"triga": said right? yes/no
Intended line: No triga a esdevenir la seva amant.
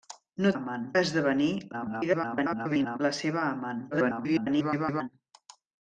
no